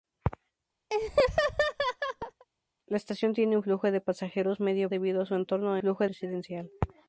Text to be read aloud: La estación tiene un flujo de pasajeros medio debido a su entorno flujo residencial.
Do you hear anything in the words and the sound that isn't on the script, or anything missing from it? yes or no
yes